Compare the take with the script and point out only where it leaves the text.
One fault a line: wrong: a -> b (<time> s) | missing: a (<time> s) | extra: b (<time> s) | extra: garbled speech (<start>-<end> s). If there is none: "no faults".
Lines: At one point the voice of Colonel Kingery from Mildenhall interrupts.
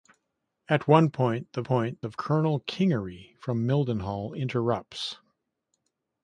wrong: voice -> point (1.6 s)